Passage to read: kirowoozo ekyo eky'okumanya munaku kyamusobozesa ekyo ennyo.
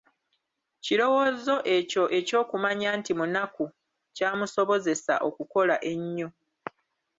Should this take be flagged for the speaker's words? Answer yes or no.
yes